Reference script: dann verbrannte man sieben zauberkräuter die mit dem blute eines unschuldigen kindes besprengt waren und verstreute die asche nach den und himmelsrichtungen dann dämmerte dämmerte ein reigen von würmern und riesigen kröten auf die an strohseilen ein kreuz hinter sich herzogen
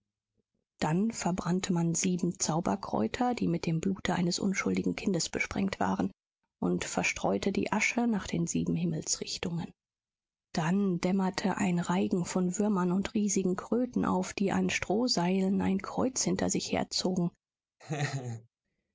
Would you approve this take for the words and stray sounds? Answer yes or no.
no